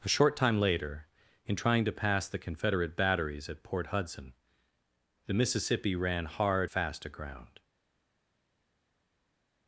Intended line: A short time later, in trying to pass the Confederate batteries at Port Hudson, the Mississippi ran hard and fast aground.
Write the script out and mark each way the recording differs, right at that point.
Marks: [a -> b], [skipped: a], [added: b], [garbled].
A short time later, in trying to pass the Confederate batteries at Port Hudson, the Mississippi ran hard [skipped: and] fast aground.